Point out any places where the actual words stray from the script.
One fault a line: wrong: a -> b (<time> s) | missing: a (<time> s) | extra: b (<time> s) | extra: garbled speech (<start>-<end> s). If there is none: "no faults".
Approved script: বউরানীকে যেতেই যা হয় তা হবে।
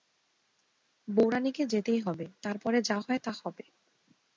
extra: হবে তার পরে (2.0 s)